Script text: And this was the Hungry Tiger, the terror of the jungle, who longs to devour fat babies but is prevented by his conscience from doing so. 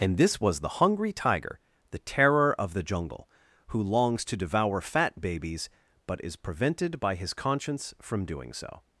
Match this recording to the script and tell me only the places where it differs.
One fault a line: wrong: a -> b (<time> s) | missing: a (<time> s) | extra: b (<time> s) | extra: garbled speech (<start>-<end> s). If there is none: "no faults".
no faults